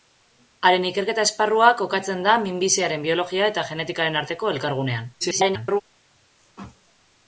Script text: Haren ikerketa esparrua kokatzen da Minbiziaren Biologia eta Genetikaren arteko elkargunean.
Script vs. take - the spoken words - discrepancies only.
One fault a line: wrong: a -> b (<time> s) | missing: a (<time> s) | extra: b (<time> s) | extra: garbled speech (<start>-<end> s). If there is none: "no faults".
extra: garbled speech (5.2-5.8 s)